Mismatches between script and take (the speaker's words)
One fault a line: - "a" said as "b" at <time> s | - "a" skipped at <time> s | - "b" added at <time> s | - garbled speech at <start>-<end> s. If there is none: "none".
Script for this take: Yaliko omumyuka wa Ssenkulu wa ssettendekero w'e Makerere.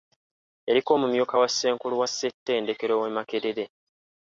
none